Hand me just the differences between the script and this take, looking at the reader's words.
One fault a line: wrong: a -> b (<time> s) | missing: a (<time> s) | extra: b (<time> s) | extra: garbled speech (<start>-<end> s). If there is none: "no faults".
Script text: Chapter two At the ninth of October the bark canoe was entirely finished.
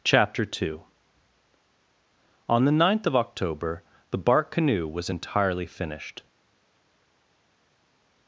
wrong: At -> On (2.5 s)